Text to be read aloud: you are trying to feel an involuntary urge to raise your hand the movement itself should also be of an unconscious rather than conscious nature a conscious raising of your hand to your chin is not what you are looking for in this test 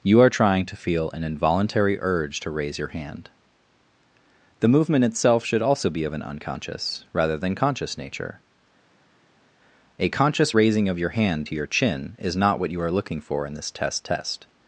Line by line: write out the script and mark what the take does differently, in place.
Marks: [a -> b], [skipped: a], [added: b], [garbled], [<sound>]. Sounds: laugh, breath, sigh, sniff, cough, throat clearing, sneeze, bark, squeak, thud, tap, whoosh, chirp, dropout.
you are trying to feel an involuntary urge to raise your hand the movement itself should also be of an unconscious rather than conscious nature a conscious raising of your hand to your chin is not what you are looking for in this test [added: test]